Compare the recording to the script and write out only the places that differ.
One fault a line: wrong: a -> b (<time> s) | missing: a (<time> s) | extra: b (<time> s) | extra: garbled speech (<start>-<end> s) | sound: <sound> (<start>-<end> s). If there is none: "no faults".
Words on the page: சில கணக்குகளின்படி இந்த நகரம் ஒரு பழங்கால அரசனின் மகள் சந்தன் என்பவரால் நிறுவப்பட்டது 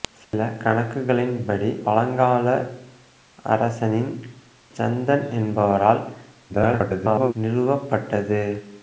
sound: dropout (0.2-0.3 s)
missing: இந்த நகரம் ஒரு (1.7 s)
missing: மகள் (4.1 s)
extra: garbled speech (6.5-7.3 s)